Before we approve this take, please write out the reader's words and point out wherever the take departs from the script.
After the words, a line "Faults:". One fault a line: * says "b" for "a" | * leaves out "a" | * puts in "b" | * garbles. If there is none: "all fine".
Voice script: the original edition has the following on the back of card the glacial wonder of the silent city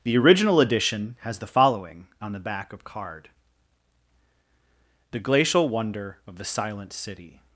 the original edition has the following on the back of card the glacial wonder of the silent city
Faults:
all fine